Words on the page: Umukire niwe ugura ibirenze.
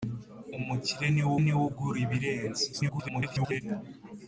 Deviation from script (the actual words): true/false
true